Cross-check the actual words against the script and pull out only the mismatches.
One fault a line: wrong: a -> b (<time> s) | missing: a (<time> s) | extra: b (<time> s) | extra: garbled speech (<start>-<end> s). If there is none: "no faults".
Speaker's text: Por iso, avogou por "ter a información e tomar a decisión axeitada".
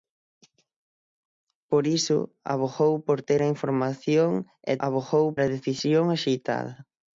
wrong: tomar -> avogou (4.9 s)